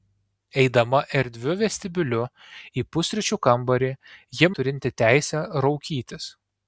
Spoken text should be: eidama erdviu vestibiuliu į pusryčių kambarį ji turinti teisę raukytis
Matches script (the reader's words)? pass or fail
pass